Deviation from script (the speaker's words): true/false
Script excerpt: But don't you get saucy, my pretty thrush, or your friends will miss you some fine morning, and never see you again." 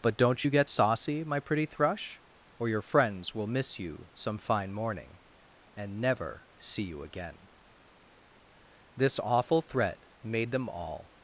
true